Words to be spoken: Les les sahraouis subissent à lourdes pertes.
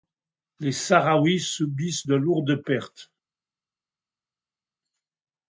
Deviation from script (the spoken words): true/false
true